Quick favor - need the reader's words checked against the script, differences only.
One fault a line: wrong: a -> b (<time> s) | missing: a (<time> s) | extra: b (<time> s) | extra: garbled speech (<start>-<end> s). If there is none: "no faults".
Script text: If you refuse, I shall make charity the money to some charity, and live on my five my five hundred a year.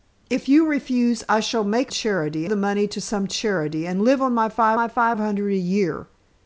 no faults